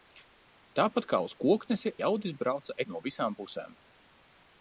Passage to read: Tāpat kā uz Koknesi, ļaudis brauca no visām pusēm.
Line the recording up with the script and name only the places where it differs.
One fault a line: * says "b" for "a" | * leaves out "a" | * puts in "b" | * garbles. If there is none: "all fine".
all fine